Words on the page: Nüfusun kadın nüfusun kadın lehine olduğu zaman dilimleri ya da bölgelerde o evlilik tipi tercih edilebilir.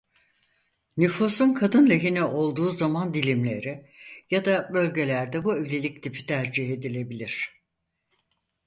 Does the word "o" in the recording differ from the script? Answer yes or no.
yes